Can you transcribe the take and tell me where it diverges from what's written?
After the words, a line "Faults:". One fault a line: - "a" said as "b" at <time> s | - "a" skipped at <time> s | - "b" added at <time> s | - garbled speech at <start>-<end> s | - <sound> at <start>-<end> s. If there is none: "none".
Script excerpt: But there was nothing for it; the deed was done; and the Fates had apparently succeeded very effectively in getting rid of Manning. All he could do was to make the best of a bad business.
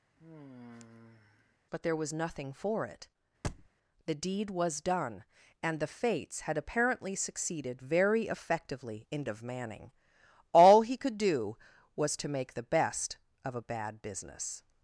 But there was nothing for it; the deed was done; and the Fates had apparently succeeded very effectively in of Manning. All he could do was to make the best of a bad business.
Faults:
- sigh at 0.2-1.6 s
- thud at 3.4-3.7 s
- "getting rid" skipped at 9.2 s